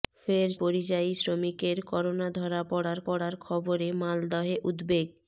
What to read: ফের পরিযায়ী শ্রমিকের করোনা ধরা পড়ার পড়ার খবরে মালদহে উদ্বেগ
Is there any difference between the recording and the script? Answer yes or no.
no